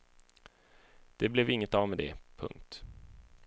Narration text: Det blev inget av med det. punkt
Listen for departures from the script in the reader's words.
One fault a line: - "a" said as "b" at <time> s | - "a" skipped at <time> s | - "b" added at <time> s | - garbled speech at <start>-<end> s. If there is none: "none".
none